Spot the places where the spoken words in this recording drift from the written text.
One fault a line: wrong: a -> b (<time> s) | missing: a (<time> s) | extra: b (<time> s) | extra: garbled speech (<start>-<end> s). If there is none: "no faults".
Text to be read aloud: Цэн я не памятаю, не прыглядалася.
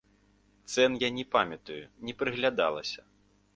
no faults